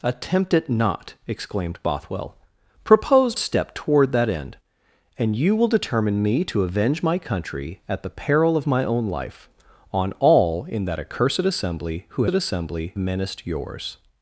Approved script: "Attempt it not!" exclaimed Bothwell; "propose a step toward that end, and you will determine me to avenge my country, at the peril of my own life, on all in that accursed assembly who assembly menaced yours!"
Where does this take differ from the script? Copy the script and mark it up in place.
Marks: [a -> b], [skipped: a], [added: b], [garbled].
"Attempt it not!" exclaimed Bothwell; "propose a step toward that end, and you will determine me to avenge my country, at the peril of my own life, on all in that accursed assembly who assembly menaced yours!"